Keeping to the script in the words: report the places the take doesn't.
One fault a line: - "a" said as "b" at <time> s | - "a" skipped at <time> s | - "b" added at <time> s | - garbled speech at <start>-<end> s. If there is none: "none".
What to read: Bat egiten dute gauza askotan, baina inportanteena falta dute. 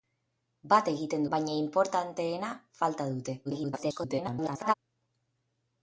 - "dute gauza askotan" skipped at 1.3 s
- garbled speech at 3.4-4.7 s